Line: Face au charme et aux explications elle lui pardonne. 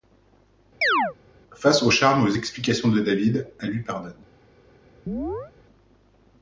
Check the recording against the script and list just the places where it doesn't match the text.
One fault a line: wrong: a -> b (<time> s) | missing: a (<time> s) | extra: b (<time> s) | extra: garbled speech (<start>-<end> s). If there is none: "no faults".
extra: de David (2.9 s)